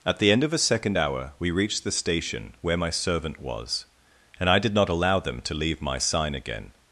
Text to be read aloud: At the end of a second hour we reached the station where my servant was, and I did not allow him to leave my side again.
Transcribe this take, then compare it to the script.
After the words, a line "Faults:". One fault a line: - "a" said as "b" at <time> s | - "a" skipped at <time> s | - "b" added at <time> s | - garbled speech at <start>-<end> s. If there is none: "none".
At the end of a second hour we reached the station where my servant was, and I did not allow them to leave my sign again.
Faults:
- "him" said as "them" at 5.2 s
- "side" said as "sign" at 6.0 s